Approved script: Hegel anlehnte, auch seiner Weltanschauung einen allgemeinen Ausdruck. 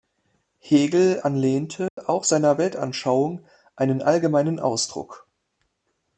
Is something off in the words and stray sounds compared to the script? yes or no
yes